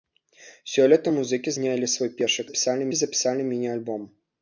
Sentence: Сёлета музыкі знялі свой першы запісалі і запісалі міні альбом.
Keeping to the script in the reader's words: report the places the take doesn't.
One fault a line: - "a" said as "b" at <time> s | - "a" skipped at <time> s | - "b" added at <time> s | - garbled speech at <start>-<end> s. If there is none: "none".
none